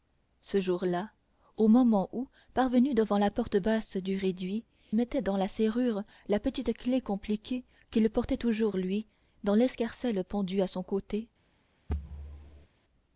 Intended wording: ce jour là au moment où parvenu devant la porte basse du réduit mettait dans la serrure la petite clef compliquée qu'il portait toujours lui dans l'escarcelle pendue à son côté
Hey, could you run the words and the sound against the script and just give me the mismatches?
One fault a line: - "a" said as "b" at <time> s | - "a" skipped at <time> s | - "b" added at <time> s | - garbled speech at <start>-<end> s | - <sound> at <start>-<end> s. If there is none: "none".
- thud at 11.9-12.7 s